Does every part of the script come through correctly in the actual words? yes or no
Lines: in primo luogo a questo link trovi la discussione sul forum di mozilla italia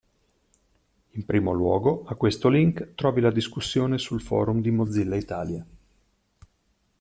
yes